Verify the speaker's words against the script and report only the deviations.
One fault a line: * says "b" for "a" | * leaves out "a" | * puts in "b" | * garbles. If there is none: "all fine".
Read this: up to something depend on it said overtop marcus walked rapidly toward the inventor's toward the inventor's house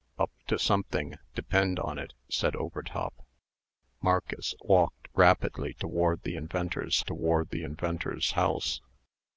all fine